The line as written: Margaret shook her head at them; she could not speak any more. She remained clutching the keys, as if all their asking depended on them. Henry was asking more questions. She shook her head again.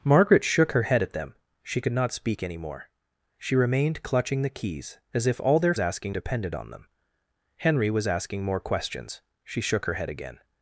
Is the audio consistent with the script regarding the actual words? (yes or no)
yes